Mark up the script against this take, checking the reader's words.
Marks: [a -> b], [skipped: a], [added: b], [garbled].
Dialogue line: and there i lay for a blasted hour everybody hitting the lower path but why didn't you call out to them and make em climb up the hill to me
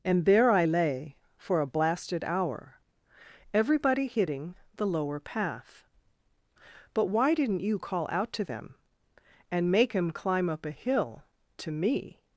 and there i lay for a blasted hour everybody hitting the lower path but why didn't you call out to them and make em climb up [the -> a] hill to me